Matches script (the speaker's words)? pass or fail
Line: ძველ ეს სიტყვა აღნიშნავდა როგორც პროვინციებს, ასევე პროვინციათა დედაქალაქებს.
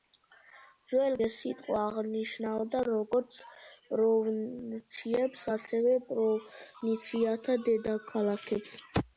pass